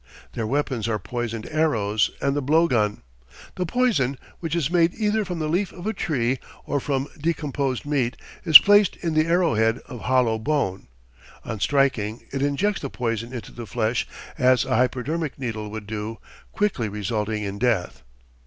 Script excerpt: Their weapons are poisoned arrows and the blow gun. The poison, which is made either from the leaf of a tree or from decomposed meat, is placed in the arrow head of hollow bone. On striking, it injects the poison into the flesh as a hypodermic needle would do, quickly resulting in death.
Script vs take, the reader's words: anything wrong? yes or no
no